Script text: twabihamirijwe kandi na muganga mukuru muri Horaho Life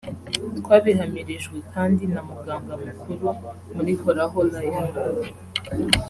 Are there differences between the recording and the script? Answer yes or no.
no